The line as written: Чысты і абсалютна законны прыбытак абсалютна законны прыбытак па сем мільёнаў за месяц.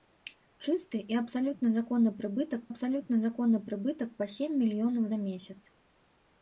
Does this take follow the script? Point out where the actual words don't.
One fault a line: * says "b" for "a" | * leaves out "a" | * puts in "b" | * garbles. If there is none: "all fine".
all fine